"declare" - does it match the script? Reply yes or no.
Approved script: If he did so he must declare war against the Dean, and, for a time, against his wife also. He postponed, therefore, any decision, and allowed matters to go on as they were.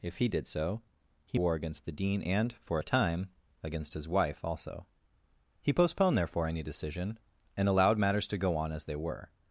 no